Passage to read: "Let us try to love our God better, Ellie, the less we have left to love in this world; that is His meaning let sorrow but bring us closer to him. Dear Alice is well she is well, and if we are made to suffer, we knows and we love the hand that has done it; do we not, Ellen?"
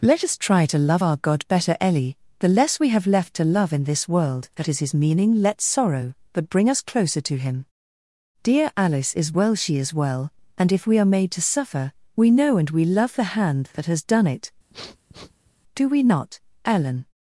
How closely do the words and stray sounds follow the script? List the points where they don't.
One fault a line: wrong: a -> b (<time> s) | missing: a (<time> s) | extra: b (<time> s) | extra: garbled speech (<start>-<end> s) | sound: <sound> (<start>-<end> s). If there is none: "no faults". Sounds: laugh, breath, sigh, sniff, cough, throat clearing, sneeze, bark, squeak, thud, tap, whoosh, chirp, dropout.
wrong: knows -> know (12.3 s)
sound: sniff (14.7-15.5 s)